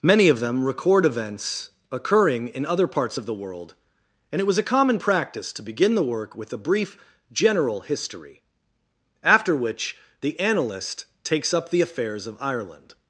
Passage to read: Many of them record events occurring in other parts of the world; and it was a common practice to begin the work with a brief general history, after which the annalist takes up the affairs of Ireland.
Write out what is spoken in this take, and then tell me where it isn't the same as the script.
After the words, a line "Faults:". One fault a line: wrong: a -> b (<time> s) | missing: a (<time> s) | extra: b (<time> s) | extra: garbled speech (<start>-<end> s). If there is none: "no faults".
Many of them record events occurring in other parts of the world; and it was a common practice to begin the work with a brief general history, after which the annalist takes up the affairs of Ireland.
Faults:
no faults